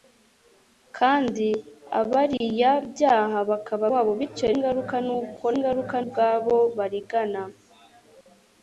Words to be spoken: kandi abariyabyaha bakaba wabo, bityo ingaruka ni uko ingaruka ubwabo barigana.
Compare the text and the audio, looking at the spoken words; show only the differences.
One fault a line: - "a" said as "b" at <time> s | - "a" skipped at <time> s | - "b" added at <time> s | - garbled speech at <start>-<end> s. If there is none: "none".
none